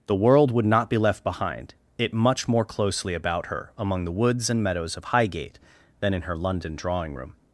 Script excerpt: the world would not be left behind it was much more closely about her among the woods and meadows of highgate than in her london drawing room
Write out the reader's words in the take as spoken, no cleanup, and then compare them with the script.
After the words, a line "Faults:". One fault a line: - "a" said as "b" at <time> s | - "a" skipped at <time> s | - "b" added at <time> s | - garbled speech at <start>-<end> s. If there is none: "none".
the world would not be left behind it much more closely about her among the woods and meadows of highgate than in her london drawing room
Faults:
- "was" skipped at 2.1 s